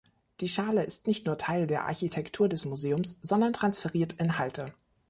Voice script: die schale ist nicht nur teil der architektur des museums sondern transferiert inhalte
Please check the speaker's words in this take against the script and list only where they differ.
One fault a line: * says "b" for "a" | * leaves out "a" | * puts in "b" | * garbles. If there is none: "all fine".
all fine